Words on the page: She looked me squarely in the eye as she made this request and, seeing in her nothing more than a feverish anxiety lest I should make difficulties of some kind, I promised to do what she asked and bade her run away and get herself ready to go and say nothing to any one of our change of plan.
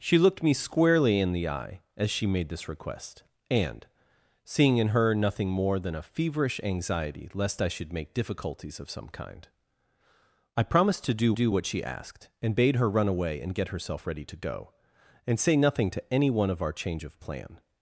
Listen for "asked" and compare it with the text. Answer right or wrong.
right